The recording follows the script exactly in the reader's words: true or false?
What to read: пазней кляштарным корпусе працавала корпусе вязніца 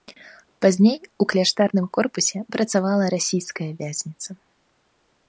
false